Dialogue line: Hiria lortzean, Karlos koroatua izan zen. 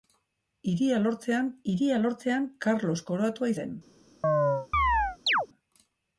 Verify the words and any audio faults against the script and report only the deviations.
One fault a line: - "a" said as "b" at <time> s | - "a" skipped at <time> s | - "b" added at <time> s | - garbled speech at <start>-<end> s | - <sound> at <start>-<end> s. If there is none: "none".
- "hiria lortzean" added at 1.7 s
- "izan" skipped at 3.5 s
- chirp at 4.2-5.5 s